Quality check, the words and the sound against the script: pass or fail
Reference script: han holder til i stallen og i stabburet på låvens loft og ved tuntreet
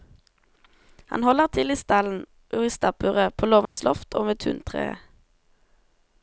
fail